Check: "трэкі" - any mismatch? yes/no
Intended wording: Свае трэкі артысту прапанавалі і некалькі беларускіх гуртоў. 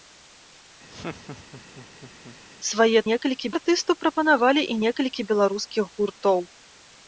yes